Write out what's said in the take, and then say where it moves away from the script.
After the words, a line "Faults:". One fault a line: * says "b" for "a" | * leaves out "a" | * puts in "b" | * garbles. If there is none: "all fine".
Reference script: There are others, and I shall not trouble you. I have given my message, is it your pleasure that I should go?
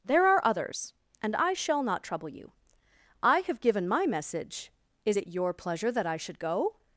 There are others, and I shall not trouble you. I have given my message, is it your pleasure that I should go?
Faults:
all fine